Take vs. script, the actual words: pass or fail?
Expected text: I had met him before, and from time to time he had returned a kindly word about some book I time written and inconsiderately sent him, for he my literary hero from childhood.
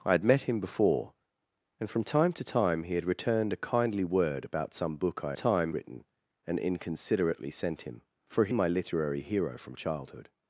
pass